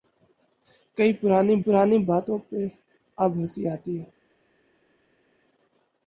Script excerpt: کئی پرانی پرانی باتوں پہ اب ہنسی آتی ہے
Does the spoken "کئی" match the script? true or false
true